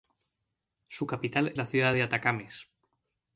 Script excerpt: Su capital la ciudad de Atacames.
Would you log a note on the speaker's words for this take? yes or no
no